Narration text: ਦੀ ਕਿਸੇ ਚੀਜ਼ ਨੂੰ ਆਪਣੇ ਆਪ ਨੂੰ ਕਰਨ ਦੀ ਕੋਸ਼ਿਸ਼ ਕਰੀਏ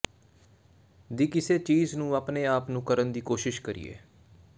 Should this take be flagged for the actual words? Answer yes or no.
no